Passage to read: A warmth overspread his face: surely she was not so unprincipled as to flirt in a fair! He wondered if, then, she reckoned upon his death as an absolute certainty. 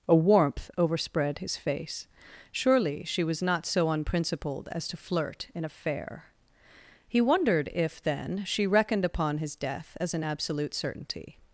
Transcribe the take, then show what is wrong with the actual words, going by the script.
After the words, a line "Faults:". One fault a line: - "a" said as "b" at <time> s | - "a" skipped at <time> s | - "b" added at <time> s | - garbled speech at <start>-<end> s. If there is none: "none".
A warmth overspread his face: surely she was not so unprincipled as to flirt in a fair! He wondered if, then, she reckoned upon his death as an absolute certainty.
Faults:
none